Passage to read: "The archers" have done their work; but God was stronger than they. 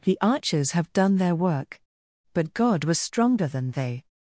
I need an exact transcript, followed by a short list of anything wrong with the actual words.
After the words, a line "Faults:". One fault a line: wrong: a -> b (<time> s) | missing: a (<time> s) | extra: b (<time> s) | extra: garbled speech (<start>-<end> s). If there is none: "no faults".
"The archers" have done their work; but God was stronger than they.
Faults:
no faults